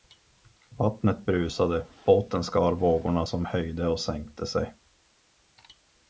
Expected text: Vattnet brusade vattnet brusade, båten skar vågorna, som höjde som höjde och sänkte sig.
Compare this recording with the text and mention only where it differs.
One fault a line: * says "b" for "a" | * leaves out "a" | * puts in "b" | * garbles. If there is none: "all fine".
* leaves out "vattnet brusade"
* leaves out "som höjde"